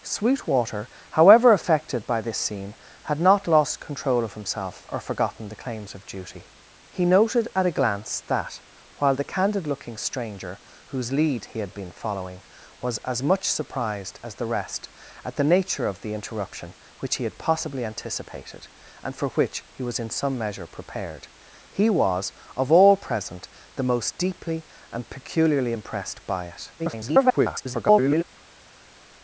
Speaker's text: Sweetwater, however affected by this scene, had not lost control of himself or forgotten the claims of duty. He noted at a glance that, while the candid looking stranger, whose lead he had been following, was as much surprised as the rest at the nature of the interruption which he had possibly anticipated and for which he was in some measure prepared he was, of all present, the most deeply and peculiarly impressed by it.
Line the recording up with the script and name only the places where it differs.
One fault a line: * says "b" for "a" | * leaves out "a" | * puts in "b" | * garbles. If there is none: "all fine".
* garbles